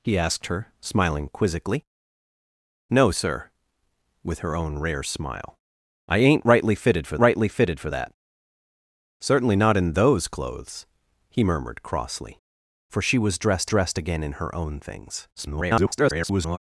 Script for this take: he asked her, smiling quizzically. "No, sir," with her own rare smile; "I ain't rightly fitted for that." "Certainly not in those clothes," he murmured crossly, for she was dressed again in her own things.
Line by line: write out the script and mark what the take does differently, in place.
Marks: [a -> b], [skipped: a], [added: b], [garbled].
he asked her, smiling quizzically. "No, sir," with her own rare smile; "I ain't rightly fitted for [added: rightly fitted for] that." "Certainly not in those clothes," he murmured crossly, for she was dressed [added: dressed] again in her own things. [garbled]